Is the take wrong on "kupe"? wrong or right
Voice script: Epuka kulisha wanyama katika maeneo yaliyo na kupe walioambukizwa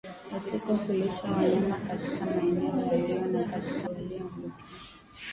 wrong